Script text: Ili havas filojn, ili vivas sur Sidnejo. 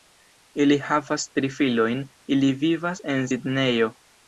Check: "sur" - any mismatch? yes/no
yes